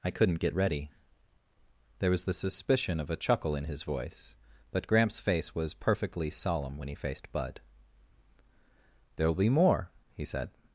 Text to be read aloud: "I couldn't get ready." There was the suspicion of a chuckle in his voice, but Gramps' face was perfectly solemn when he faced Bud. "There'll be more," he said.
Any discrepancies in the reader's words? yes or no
no